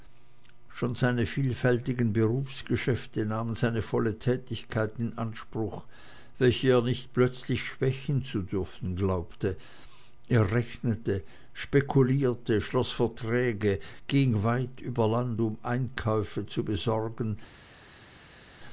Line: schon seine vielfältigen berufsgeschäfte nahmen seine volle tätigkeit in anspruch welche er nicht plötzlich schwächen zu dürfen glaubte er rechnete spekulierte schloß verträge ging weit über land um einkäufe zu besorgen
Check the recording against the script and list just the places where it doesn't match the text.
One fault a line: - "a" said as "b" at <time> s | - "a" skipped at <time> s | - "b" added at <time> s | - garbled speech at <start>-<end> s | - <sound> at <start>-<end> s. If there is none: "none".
none